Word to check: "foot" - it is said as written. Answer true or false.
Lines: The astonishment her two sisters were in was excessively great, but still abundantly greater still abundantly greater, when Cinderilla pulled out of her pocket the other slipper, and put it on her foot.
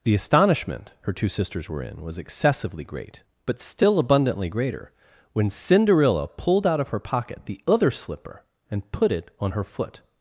true